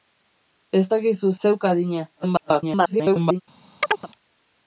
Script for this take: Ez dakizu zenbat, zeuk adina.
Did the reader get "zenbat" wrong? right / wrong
wrong